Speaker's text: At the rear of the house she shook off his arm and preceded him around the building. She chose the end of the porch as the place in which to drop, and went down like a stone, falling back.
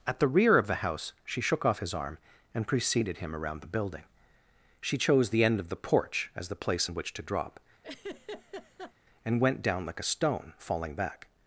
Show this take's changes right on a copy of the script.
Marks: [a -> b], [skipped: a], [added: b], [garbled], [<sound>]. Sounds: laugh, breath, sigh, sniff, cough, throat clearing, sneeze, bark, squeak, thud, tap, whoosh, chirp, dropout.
At the rear of the house she shook off his arm and preceded him around the building. She chose the end of the porch as the place in which to drop, [laugh] and went down like a stone, falling back.